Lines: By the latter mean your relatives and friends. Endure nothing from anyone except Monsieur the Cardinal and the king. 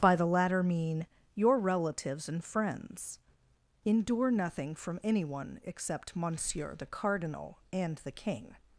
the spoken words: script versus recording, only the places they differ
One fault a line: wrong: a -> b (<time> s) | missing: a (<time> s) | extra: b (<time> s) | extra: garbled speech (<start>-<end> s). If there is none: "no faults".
no faults